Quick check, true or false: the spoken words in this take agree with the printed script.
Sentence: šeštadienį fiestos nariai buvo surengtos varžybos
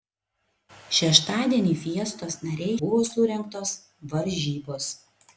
true